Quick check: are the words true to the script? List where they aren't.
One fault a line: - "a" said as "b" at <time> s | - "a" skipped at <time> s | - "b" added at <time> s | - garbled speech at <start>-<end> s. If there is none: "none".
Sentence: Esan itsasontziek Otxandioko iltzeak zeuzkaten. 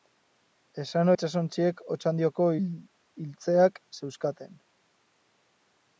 none